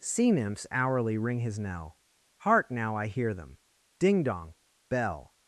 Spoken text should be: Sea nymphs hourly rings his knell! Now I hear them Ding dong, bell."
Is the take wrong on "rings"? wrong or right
wrong